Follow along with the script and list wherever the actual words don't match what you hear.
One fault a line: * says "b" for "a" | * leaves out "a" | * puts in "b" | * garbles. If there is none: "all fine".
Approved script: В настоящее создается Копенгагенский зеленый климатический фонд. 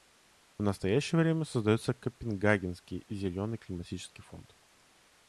* puts in "время"